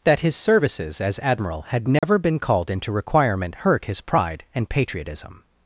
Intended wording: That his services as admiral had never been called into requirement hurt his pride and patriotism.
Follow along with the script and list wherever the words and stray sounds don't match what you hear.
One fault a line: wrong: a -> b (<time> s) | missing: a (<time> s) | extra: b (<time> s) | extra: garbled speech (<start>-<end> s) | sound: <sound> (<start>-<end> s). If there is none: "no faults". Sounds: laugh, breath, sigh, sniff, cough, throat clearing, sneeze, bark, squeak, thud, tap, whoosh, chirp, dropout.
sound: dropout (2.0-2.0 s)